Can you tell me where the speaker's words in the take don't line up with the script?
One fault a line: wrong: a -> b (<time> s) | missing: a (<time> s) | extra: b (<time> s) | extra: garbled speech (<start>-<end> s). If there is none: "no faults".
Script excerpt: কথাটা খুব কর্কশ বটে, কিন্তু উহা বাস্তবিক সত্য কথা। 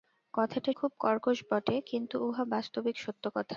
no faults